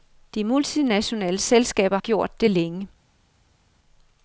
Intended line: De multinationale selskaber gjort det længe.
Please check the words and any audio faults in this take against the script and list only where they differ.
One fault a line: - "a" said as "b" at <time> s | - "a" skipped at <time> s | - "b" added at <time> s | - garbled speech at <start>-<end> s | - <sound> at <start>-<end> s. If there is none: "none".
none